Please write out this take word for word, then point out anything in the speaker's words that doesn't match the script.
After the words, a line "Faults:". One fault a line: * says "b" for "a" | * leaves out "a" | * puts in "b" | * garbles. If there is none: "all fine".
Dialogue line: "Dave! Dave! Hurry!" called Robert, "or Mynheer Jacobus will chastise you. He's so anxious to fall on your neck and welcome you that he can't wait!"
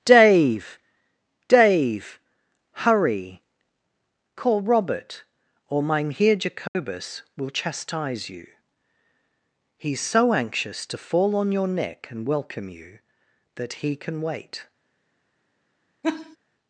"Dave! Dave! Hurry!" call Robert, "or Mynheer Jacobus will chastise you. He's so anxious to fall on your neck and welcome you that he can wait!"
Faults:
* says "call" for "called"
* says "can" for "can't"